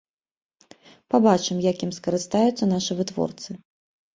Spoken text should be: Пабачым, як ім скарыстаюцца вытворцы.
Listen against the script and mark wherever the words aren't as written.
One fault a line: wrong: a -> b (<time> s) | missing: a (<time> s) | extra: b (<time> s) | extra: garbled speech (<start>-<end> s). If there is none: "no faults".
extra: нашы (2.7 s)